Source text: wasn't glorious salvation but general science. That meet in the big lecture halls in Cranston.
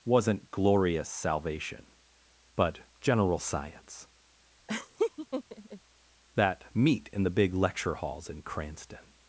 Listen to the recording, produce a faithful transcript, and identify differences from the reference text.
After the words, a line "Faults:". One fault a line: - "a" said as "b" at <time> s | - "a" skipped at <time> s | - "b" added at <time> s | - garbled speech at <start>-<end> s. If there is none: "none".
wasn't glorious salvation but general science. That meet in the big lecture halls in Cranston.
Faults:
none